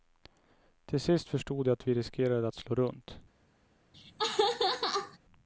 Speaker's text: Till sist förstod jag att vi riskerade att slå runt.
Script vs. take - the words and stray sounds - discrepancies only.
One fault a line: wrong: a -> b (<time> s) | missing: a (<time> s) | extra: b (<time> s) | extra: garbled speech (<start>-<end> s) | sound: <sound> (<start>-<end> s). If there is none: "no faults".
sound: laugh (3.9-5.2 s)